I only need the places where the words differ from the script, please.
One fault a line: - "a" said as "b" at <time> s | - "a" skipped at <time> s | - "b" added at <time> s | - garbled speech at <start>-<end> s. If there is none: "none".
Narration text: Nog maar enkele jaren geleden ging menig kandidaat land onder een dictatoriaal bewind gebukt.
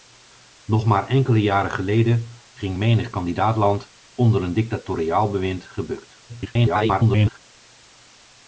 - garbled speech at 6.3-7.4 s